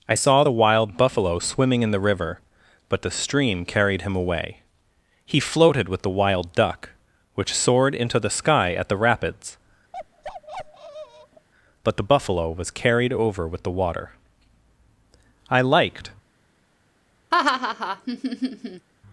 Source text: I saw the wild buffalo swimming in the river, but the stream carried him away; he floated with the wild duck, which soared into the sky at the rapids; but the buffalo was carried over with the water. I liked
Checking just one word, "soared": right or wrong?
right